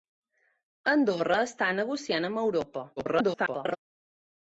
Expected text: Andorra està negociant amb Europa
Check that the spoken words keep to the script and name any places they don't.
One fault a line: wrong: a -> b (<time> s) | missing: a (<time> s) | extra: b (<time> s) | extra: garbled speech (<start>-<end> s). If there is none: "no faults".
extra: garbled speech (3.0-3.8 s)